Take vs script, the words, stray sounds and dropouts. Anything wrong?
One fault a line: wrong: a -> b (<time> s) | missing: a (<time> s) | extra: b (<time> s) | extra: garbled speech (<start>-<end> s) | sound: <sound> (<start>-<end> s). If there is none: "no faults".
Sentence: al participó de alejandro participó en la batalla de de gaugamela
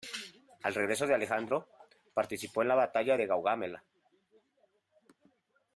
wrong: participó -> regreso (0.7 s)
missing: de (3.3 s)